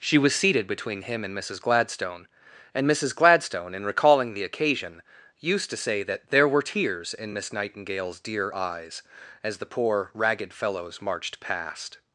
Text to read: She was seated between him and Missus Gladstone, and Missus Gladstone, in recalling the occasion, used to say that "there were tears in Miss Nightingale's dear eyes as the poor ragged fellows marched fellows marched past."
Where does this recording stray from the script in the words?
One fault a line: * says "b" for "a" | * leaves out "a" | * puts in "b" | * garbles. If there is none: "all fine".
* leaves out "fellows marched"